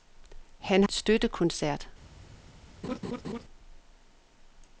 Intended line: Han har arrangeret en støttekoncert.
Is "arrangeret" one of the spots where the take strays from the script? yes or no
yes